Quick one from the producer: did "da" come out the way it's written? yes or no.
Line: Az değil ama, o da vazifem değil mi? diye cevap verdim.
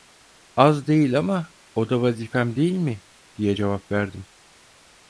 yes